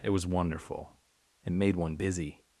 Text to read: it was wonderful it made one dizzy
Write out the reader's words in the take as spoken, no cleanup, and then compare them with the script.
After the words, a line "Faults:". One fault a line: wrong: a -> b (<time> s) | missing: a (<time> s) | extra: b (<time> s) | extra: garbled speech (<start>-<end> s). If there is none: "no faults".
it was wonderful it made one busy
Faults:
wrong: dizzy -> busy (1.9 s)